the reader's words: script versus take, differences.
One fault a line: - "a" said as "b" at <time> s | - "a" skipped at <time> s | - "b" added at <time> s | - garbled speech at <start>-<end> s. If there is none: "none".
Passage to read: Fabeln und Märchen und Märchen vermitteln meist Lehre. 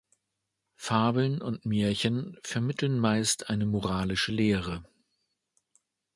- "und Märchen vermitteln meist" said as "vermitteln meist eine moralische" at 2.4 s